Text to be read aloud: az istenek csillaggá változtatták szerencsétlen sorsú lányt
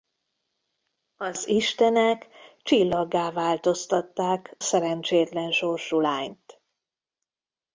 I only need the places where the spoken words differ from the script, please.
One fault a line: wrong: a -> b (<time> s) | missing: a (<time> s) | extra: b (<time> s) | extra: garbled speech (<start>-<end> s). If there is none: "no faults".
no faults